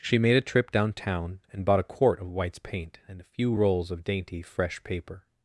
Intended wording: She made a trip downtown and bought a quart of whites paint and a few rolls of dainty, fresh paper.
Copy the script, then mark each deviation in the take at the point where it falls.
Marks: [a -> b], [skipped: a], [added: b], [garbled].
She made a trip downtown and bought a quart of whites paint and a few rolls of dainty, fresh paper.